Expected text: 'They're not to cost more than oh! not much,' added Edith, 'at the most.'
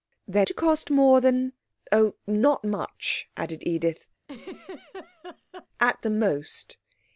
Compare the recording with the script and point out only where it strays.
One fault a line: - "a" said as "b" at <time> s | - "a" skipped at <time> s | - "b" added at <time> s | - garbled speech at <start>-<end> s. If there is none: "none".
- "not" skipped at 0.5 s